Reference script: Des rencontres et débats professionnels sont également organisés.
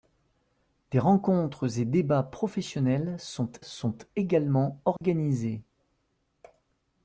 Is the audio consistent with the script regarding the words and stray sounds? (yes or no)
no